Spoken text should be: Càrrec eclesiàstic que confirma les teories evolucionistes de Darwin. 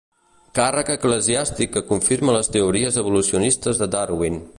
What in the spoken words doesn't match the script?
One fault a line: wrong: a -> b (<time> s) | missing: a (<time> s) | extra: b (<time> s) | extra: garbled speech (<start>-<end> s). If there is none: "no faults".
no faults